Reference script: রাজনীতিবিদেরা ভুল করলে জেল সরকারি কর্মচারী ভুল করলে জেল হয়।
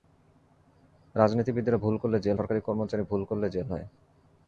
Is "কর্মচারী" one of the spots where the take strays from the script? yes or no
no